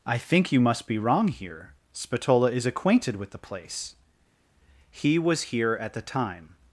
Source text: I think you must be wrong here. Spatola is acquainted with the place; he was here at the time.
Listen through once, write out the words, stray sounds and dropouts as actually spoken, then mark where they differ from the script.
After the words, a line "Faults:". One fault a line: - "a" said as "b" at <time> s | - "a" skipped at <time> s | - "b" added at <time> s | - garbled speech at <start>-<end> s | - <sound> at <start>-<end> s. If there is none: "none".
I think you must be wrong here. Spatola is acquainted with the place; he was here at the time.
Faults:
none